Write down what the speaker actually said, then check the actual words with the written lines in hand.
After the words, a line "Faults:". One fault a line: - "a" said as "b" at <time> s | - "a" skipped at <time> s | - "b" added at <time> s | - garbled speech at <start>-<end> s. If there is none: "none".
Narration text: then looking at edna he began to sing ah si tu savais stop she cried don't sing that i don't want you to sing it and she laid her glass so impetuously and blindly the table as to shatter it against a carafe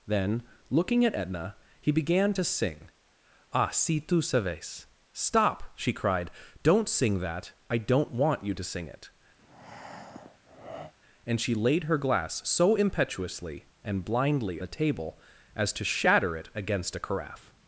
then looking at edna he began to sing ah si tu savais stop she cried don't sing that i don't want you to sing it and she laid her glass so impetuously and blindly the table as to shatter it against a carafe
Faults:
none